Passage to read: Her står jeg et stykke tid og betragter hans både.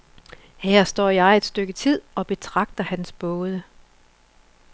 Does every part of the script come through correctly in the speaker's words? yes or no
yes